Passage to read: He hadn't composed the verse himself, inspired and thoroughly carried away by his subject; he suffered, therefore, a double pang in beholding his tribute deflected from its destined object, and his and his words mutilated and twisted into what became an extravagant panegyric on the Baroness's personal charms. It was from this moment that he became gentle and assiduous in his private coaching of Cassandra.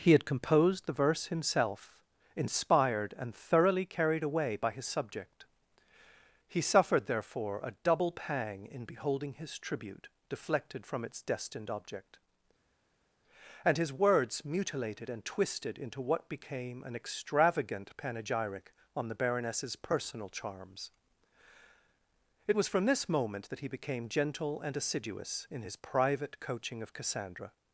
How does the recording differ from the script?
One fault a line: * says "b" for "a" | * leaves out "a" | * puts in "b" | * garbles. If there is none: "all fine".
* says "had" for "hadn't"
* leaves out "and his"